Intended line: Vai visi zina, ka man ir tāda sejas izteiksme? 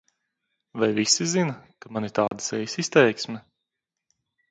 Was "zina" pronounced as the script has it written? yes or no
yes